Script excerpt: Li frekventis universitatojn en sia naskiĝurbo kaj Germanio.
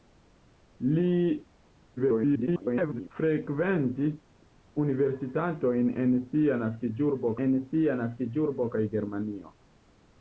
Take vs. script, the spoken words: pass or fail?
fail